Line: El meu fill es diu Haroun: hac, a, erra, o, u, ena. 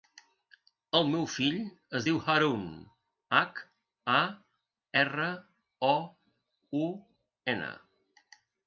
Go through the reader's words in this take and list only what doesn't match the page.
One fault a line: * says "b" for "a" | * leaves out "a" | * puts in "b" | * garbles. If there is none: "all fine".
all fine